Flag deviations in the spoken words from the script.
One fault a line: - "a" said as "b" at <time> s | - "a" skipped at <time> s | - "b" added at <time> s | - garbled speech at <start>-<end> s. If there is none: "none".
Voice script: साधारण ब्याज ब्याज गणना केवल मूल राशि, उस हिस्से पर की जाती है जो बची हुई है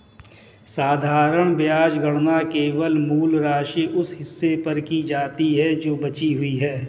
- "ब्याज" skipped at 2.0 s